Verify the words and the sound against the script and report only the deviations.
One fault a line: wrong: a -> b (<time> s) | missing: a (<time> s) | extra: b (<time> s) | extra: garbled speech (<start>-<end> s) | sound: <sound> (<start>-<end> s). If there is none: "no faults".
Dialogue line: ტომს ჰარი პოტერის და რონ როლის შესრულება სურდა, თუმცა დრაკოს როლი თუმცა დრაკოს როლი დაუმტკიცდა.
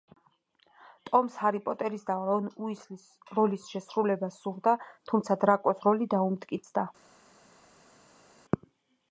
extra: უისლის (2.7 s)
missing: თუმცა დრაკოს როლი (6.1 s)